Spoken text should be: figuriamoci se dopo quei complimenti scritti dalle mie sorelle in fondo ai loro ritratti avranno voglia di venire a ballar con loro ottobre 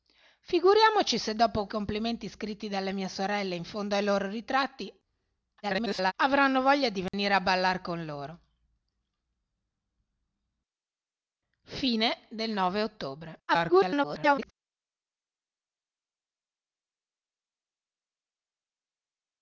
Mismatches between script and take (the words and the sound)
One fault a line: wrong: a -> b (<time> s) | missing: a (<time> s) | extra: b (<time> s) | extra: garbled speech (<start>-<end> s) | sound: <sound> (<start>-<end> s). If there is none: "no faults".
missing: quei (1.7 s)
extra: garbled speech (5.6-6.1 s)
sound: dropout (7.1-7.1 s)
extra: garbled speech (13.5-14.5 s)